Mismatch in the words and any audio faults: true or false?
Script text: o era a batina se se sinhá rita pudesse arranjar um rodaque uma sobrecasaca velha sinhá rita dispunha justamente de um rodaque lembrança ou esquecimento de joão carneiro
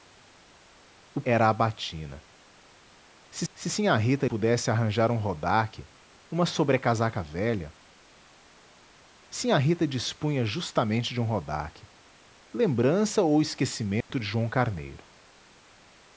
true